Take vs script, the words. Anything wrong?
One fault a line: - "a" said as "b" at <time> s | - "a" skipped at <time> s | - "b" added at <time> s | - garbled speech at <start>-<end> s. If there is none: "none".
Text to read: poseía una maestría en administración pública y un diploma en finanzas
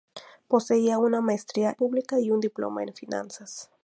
- "en administración" skipped at 1.8 s